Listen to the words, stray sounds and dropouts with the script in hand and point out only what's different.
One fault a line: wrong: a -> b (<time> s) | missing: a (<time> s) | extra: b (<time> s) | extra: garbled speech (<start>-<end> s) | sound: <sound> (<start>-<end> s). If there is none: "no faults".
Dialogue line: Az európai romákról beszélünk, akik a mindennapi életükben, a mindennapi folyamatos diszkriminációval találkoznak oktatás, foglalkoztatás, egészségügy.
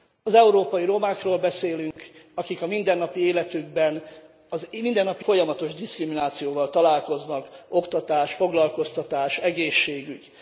sound: dropout (1.9-2.0 s)